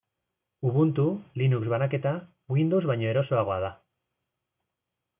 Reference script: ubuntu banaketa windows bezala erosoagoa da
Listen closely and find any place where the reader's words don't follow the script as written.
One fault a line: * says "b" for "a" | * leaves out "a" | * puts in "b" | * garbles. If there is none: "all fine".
* puts in "linux"
* says "baino" for "bezala"